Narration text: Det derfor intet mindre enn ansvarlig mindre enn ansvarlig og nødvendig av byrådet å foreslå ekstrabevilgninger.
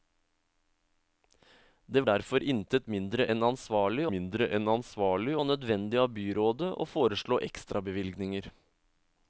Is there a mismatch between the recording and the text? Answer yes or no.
no